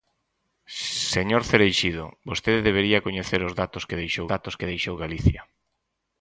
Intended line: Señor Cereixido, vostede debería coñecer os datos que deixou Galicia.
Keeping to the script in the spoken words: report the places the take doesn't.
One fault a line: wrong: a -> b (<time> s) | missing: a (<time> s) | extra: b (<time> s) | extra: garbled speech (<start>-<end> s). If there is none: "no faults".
extra: datos que deixou (4.3 s)